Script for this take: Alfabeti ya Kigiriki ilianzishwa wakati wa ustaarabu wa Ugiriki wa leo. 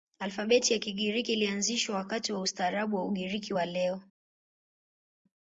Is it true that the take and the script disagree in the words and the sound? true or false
false